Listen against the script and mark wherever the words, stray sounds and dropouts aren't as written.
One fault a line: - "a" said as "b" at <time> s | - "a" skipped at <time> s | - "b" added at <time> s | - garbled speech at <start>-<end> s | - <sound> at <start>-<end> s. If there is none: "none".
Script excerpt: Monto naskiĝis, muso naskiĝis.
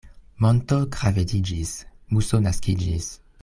- "naskiĝis" said as "gravediĝis" at 0.9 s